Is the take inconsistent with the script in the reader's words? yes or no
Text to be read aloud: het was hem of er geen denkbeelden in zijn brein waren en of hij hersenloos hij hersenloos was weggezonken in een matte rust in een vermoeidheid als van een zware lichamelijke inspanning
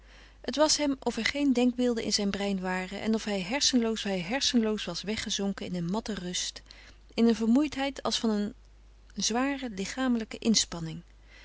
no